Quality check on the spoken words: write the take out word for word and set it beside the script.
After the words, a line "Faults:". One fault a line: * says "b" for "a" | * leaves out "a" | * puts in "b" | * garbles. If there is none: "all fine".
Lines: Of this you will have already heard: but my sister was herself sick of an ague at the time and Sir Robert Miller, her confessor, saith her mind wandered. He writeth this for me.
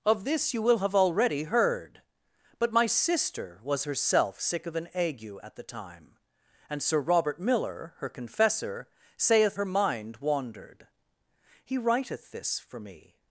Of this you will have already heard: but my sister was herself sick of an ague at the time and Sir Robert Miller, her confessor, saith her mind wandered. He writeth this for me.
Faults:
all fine